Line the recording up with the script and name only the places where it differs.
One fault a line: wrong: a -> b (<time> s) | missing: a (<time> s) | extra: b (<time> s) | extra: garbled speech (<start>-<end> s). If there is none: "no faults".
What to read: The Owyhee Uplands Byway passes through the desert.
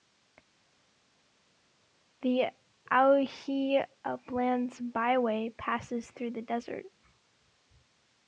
no faults